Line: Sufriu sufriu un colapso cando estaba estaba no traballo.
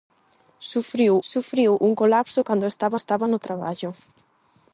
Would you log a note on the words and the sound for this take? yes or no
no